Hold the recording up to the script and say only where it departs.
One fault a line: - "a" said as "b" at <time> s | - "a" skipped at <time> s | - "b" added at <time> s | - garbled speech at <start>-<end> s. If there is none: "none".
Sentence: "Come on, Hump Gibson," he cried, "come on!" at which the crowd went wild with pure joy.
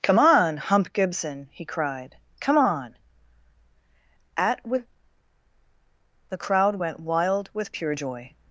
- "which" said as "with" at 4.7 s